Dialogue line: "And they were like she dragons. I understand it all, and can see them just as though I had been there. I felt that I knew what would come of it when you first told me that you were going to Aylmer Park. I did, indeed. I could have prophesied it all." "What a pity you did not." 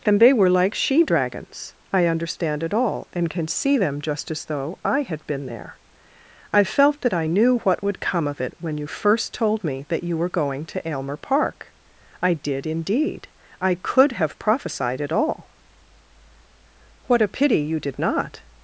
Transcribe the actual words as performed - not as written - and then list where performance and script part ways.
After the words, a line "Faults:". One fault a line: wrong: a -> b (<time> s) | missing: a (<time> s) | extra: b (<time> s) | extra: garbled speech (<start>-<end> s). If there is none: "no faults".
"And they were like she dragons. I understand it all, and can see them just as though I had been there. I felt that I knew what would come of it when you first told me that you were going to Aylmer Park. I did, indeed. I could have prophesied it all." "What a pity you did not."
Faults:
no faults